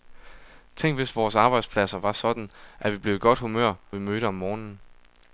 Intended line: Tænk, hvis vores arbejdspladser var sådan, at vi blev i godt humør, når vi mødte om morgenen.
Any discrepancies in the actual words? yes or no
yes